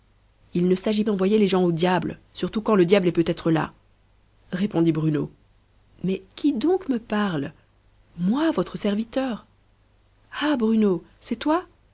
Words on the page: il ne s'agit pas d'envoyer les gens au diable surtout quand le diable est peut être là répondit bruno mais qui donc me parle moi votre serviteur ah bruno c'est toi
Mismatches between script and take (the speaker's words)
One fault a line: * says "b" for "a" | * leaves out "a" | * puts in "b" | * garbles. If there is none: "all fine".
* leaves out "pas"